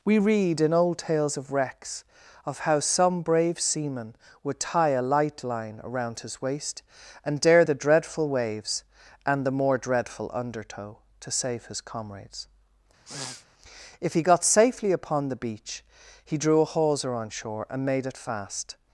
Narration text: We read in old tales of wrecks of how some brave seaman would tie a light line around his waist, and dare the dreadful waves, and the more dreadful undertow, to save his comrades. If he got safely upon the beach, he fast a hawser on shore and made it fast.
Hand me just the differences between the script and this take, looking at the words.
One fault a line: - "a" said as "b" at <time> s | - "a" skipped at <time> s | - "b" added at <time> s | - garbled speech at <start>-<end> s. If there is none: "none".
- "fast" said as "drew" at 16.4 s